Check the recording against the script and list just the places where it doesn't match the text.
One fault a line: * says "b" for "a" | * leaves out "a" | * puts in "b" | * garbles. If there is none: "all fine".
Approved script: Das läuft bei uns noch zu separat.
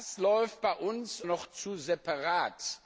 all fine